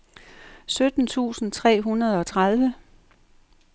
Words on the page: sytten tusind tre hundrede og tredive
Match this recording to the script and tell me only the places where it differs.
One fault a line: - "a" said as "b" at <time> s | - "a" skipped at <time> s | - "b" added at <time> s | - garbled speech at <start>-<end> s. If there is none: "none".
none